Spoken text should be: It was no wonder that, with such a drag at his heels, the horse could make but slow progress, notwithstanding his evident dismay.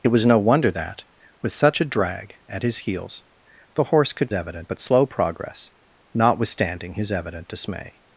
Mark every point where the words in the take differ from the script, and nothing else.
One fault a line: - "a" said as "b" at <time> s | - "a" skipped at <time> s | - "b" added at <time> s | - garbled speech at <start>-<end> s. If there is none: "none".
- "make" said as "evident" at 4.3 s